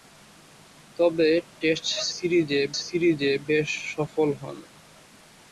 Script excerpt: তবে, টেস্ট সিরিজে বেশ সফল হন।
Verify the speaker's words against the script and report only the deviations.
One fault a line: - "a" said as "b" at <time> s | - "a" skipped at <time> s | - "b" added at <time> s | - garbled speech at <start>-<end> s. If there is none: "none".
- "সিরিজে" added at 2.8 s